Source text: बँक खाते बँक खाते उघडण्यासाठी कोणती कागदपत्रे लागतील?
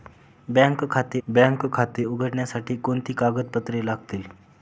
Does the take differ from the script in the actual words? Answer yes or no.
no